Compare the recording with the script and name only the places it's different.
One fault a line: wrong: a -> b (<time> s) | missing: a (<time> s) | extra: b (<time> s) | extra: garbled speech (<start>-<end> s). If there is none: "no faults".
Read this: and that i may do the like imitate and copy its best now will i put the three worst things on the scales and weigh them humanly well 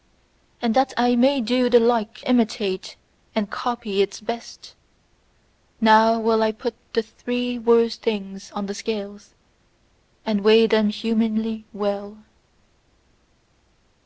no faults